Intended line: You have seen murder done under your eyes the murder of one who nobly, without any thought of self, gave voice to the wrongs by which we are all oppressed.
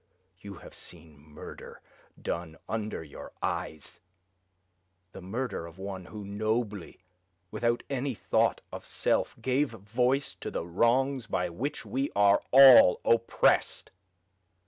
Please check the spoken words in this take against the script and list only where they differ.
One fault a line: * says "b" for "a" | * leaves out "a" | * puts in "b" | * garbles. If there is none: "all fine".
all fine